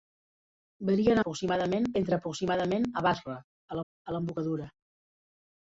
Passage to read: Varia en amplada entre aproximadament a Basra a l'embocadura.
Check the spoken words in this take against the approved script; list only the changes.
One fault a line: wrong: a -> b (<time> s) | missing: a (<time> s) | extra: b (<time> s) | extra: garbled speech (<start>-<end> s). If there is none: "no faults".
wrong: amplada -> aproximadament (1.2 s)
extra: a (3.8 s)